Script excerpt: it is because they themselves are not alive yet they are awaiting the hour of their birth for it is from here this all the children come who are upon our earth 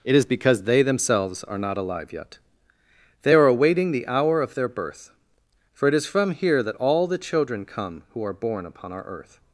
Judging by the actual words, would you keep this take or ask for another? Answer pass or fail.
fail